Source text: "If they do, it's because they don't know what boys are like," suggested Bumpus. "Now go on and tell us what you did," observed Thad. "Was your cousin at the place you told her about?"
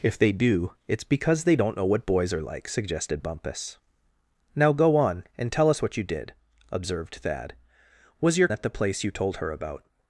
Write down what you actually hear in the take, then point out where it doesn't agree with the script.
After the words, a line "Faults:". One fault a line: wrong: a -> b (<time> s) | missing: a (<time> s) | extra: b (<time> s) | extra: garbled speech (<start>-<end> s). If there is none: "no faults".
"If they do, it's because they don't know what boys are like," suggested Bumpus. "Now go on and tell us what you did," observed Thad. "Was your at the place you told her about?"
Faults:
missing: cousin (8.5 s)